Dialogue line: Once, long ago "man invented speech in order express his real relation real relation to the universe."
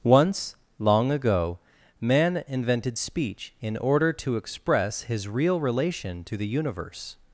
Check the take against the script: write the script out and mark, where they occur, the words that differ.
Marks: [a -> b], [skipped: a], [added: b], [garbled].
Once, long ago "man invented speech in order [added: to] express his real relation [skipped: real relation] to the universe."